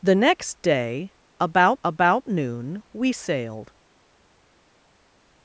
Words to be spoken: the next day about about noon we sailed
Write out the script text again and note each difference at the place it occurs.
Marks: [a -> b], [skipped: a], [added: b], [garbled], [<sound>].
the next day about about noon we sailed